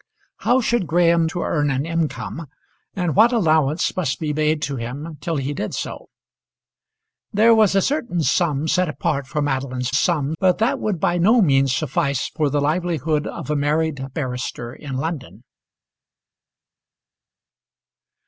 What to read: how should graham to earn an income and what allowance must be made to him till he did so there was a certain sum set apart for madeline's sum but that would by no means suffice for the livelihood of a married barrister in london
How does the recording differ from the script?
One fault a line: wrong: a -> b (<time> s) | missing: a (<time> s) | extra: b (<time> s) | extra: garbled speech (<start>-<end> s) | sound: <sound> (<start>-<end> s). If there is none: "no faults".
no faults